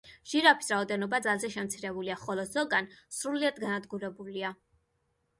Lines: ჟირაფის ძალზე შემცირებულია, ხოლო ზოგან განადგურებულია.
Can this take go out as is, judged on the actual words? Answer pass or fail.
fail